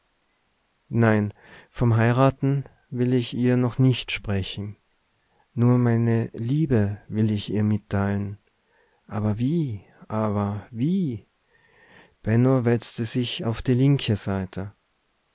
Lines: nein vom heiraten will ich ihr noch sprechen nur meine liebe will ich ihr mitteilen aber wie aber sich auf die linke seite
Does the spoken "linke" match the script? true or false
true